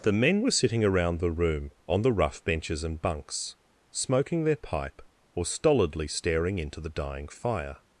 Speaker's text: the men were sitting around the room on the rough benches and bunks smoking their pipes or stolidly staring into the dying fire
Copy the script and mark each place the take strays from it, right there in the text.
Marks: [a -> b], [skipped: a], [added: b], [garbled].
the men were sitting around the room on the rough benches and bunks smoking their [pipes -> pipe] or stolidly staring into the dying fire